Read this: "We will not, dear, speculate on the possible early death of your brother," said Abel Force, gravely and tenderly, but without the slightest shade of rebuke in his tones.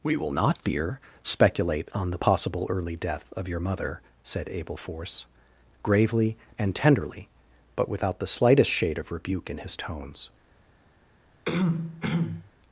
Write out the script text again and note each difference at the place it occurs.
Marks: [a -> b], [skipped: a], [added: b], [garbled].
"We will not, dear, speculate on the possible early death of your [brother," -> mother] said Abel Force, gravely and tenderly, but without the slightest shade of rebuke in his tones.